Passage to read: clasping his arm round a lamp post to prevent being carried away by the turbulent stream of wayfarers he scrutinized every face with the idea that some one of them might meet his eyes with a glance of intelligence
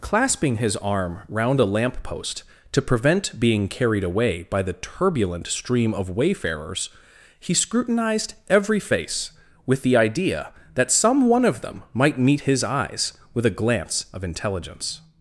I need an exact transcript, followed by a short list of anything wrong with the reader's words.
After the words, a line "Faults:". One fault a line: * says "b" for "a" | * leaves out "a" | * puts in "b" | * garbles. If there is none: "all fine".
clasping his arm round a lamp post to prevent being carried away by the turbulent stream of wayfarers he scrutinized every face with the idea that some one of them might meet his eyes with a glance of intelligence
Faults:
all fine